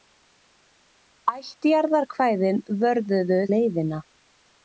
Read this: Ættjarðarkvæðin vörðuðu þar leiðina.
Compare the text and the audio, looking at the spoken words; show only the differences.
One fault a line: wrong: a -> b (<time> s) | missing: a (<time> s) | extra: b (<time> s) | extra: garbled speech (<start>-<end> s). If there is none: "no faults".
missing: þar (3.4 s)